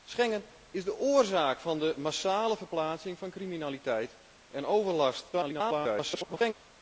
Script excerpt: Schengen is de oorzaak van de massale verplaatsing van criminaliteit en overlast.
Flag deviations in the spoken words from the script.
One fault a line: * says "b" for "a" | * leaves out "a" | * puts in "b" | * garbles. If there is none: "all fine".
* garbles